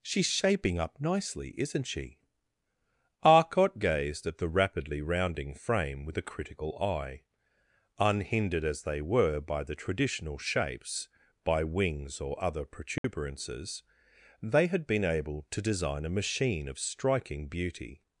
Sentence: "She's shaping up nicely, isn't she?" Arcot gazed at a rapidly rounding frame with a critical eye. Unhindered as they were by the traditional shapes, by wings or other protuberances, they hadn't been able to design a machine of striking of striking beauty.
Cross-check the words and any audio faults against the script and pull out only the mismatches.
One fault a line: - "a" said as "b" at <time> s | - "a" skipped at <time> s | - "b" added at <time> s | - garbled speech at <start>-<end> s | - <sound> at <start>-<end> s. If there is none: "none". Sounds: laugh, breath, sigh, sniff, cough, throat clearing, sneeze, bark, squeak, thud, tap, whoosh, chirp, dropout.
- "a" said as "the" at 4.4 s
- dropout at 13.0-13.0 s
- "hadn't" said as "had" at 14.7 s
- "of striking" skipped at 17.5 s